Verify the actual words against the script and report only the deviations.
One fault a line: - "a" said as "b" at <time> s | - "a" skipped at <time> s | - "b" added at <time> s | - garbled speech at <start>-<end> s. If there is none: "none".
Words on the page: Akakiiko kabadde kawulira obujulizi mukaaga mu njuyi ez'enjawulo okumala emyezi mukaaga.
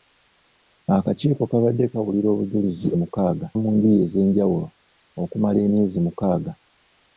none